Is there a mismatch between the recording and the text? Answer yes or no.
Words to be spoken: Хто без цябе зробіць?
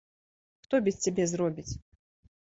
no